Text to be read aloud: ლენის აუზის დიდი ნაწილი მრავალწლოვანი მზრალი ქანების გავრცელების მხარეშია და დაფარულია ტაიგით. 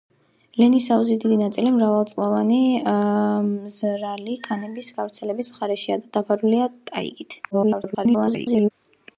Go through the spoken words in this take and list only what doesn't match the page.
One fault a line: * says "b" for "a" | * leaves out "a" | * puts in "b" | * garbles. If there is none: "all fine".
* garbles